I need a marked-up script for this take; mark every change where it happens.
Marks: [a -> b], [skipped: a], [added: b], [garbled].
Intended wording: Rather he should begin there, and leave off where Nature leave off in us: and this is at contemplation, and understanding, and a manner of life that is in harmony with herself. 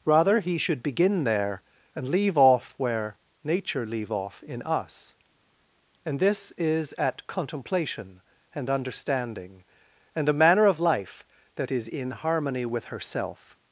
Rather he should begin there, and leave off where Nature leave off in us: and this is at contemplation, and understanding, and a manner of life that is in harmony with herself.